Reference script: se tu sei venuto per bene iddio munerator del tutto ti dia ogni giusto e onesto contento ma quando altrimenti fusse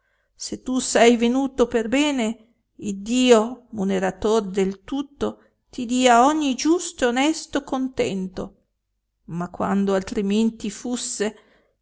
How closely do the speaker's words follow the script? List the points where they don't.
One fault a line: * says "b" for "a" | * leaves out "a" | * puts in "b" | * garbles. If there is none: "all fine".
all fine